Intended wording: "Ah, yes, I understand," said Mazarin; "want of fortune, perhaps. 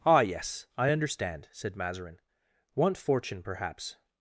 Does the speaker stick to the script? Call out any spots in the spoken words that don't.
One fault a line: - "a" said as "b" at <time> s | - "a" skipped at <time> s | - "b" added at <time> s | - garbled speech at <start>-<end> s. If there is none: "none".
- "of" skipped at 3.0 s